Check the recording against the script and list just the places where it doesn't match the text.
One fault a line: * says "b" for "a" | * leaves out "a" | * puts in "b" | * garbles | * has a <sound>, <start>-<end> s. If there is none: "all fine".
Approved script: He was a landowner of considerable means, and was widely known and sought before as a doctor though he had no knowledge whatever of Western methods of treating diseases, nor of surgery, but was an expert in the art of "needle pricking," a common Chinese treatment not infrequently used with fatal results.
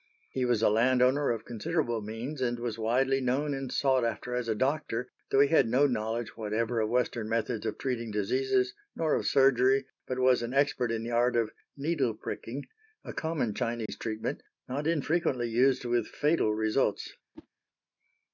* says "after" for "before"
* has a dropout, 13.9-13.9 s
* has a whoosh, 17.3-17.5 s